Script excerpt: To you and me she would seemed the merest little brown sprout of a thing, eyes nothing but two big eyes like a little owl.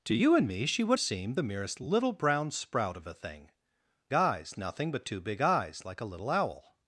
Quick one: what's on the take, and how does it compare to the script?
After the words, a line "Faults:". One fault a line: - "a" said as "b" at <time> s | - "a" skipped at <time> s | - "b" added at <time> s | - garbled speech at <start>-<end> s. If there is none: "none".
To you and me she would seemed the merest little brown sprout of a thing, eyes nothing but two big eyes like a little owl.
Faults:
none